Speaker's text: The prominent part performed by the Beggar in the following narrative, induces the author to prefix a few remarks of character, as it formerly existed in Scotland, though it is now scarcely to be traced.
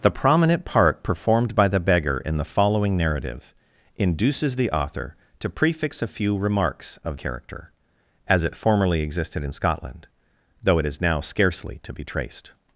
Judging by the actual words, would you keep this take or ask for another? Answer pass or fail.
pass